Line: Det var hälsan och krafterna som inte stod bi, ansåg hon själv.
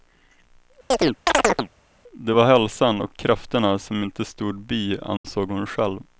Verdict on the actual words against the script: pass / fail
pass